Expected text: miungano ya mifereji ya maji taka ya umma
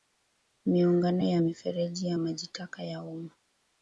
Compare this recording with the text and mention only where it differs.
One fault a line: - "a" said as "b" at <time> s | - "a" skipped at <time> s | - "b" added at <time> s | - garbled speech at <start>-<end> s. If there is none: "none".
none